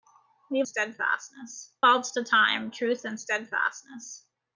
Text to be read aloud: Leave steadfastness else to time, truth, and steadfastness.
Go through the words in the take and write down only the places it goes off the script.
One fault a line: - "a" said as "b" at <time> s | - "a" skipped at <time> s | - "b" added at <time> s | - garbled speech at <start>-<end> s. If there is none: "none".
none